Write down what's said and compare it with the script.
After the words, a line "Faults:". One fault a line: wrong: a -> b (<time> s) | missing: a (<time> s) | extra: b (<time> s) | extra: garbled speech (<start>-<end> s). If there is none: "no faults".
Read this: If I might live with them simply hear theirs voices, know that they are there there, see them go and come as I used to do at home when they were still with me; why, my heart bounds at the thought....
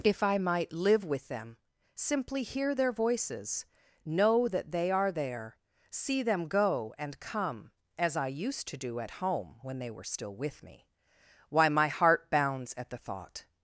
If I might live with them simply hear their voices, know that they are there, see them go and come as I used to do at home when they were still with me; why, my heart bounds at the thought....
Faults:
wrong: theirs -> their (2.7 s)
missing: there (5.6 s)